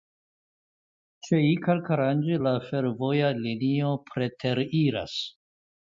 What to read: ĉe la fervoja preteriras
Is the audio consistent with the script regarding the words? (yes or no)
no